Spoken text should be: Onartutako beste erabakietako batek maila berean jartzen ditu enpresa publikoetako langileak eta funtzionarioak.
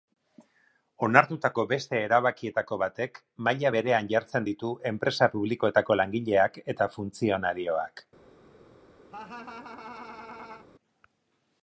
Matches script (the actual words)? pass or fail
pass